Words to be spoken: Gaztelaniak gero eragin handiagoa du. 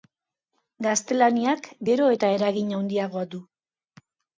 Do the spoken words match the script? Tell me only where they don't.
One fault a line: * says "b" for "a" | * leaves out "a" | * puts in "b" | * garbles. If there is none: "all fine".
* puts in "eta"